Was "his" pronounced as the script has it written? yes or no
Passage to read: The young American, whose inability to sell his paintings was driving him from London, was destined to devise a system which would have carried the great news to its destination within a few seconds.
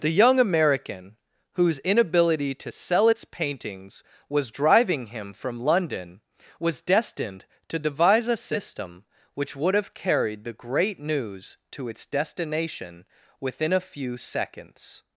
no